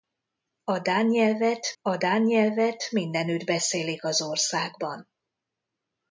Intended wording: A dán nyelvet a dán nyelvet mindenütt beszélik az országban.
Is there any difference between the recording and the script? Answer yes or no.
no